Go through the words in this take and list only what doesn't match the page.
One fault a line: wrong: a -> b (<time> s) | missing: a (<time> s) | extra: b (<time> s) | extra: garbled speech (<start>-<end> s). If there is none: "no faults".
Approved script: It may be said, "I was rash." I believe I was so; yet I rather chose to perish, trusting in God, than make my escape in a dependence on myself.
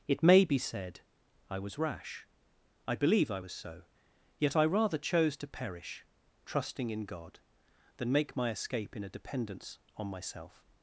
no faults